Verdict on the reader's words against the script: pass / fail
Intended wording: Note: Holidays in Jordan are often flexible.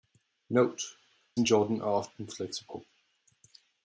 fail